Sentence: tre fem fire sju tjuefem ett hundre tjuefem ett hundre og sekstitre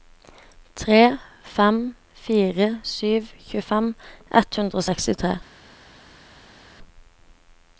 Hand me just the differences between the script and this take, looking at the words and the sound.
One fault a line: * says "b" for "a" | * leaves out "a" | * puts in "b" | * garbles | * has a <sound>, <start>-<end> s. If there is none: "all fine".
* leaves out "tjuefem ett hundre"